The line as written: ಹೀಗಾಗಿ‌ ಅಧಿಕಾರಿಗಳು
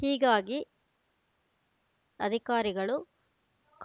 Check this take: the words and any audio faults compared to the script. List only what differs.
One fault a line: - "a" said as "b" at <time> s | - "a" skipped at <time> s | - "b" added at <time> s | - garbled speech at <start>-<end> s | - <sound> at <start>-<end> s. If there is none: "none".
none